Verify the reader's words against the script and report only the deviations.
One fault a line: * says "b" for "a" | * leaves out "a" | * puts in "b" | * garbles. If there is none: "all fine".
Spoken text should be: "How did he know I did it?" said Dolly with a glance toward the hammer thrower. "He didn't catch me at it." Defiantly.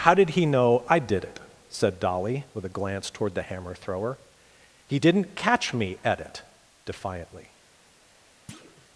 all fine